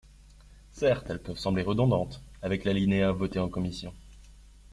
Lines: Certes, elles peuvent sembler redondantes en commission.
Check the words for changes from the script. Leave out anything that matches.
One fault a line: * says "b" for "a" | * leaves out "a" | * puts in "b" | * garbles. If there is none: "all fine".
* puts in "avec l'alinéa voté"